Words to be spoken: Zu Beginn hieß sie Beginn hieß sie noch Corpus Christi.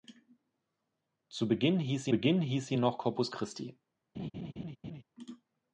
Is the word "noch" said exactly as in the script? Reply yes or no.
yes